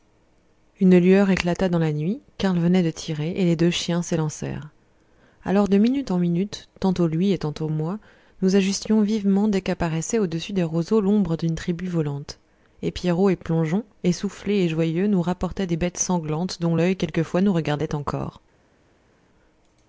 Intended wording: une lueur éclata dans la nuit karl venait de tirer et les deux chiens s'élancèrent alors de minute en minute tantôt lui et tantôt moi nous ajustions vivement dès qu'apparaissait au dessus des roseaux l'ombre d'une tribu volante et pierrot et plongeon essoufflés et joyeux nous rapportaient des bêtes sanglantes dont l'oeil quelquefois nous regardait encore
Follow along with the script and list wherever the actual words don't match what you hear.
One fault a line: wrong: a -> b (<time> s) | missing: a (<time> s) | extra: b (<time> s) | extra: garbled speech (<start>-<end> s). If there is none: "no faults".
no faults